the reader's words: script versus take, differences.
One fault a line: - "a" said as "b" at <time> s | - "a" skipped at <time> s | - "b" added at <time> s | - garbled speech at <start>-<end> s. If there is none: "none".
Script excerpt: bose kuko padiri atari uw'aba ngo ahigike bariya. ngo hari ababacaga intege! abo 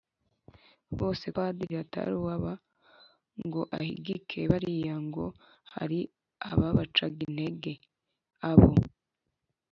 - "kuko" skipped at 1.2 s